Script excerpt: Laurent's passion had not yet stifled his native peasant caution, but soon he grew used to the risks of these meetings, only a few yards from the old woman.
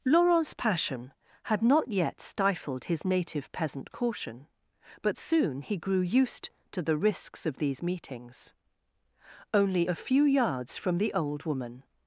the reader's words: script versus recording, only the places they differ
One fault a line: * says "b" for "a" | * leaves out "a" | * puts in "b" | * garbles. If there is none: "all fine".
all fine